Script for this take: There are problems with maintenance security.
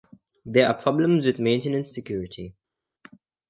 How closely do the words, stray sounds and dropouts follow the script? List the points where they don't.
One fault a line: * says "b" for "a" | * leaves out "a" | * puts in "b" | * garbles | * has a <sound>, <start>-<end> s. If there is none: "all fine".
all fine